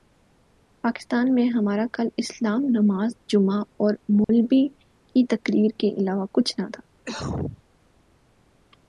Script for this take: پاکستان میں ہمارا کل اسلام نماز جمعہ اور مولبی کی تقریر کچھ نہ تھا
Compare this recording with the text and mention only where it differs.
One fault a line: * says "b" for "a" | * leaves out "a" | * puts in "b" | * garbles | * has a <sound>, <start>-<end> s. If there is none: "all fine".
* has a dropout, 4.2-4.3 s
* puts in "کے علاوہ"
* has a cough, 7.0-7.6 s